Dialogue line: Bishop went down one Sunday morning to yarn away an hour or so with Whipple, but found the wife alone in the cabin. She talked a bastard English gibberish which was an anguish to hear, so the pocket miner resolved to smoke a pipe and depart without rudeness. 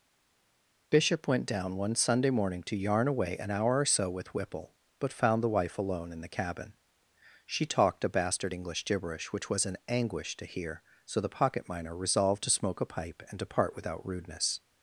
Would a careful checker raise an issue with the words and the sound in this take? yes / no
no